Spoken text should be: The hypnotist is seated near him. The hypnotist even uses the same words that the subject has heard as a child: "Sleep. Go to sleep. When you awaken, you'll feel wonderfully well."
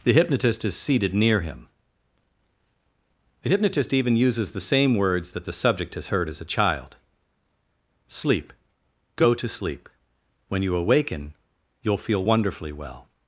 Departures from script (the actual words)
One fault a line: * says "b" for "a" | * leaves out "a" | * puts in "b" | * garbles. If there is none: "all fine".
all fine